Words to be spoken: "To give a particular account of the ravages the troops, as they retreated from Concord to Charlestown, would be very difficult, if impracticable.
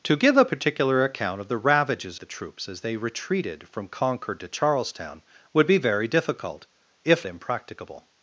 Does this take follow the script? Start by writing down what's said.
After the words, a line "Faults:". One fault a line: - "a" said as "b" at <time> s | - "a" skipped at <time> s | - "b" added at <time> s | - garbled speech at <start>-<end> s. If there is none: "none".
"To give a particular account of the ravages the troops, as they retreated from Concord to Charlestown, would be very difficult, if impracticable.
Faults:
none